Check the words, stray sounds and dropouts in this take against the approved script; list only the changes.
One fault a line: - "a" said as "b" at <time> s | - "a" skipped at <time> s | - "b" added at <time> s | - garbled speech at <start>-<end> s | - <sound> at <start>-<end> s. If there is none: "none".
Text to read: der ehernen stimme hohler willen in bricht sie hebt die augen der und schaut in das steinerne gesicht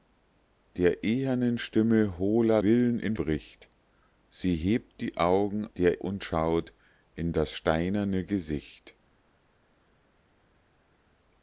none